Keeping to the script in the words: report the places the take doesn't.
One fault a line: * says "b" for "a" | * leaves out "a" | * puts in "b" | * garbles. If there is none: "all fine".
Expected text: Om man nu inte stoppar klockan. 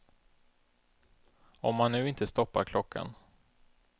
all fine